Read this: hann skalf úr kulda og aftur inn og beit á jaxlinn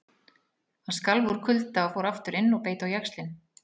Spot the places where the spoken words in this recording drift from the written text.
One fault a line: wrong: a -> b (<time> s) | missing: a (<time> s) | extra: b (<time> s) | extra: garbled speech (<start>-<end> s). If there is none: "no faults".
extra: fór (2.0 s)